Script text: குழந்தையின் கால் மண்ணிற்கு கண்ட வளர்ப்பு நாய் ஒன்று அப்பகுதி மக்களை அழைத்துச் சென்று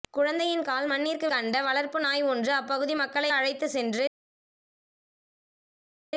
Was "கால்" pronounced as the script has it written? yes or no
yes